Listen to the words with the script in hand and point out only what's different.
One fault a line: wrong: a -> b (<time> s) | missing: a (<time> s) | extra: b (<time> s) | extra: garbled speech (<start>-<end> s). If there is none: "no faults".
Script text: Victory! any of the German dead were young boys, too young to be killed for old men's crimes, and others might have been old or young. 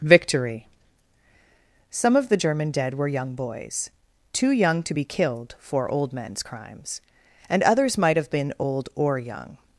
wrong: any -> some (1.9 s)